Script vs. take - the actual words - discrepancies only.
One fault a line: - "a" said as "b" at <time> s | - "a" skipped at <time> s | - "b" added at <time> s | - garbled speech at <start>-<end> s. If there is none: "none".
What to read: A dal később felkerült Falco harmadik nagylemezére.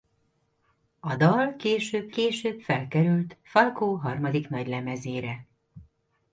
- "később" added at 2.1 s